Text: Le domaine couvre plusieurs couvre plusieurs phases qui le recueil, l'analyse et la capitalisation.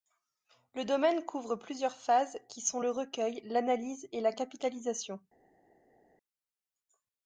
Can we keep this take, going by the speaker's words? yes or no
no